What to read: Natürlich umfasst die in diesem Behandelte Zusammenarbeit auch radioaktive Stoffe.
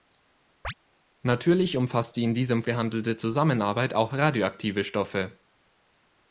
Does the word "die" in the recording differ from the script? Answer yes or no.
no